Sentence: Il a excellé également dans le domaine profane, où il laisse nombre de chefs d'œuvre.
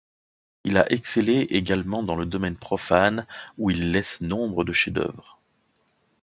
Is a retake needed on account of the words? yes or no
no